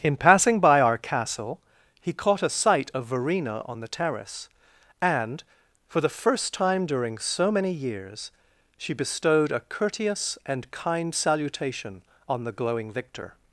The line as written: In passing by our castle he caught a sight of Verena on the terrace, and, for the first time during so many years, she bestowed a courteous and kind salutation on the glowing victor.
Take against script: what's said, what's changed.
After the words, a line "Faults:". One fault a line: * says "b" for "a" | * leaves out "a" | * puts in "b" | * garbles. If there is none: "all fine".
In passing by our castle he caught a sight of Verena on the terrace, and, for the first time during so many years, she bestowed a courteous and kind salutation on the glowing victor.
Faults:
all fine